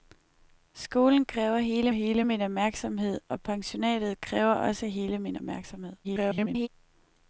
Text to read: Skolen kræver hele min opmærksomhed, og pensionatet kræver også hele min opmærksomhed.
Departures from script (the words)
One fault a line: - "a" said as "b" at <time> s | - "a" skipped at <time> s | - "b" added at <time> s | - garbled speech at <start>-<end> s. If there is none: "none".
- "hele" added at 1.9 s
- garbled speech at 6.0-6.7 s